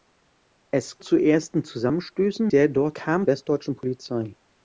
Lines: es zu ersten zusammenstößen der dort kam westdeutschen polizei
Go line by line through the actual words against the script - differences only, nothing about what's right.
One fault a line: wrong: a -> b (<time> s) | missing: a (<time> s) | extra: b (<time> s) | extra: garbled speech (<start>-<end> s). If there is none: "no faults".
no faults